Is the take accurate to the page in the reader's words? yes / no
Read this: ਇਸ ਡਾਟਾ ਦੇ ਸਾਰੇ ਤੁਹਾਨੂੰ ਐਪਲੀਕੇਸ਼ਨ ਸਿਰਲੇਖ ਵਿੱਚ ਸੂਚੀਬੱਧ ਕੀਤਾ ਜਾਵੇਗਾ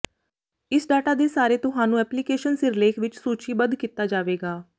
yes